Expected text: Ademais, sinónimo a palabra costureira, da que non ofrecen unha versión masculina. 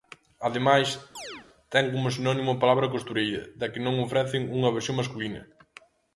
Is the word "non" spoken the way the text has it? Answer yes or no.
yes